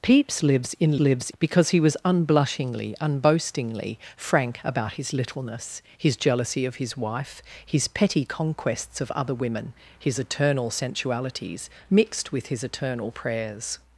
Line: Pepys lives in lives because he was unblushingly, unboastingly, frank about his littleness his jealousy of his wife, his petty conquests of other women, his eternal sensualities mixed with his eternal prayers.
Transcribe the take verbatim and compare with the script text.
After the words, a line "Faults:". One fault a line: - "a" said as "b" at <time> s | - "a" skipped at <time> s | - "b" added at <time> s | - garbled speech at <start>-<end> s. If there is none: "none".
Pepys lives in lives because he was unblushingly, unboastingly, frank about his littleness his jealousy of his wife, his petty conquests of other women, his eternal sensualities mixed with his eternal prayers.
Faults:
none